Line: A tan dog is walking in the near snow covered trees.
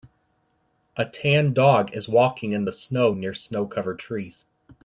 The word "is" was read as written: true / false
true